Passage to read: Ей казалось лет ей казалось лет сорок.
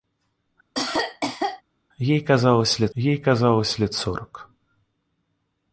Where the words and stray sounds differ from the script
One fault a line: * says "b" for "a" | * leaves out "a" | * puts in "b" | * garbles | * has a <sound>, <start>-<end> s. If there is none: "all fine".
* has a cough, 0.7-1.6 s